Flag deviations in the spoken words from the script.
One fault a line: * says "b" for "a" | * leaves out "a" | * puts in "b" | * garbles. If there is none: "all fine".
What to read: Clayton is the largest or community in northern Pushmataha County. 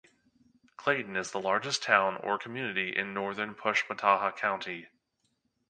* puts in "town"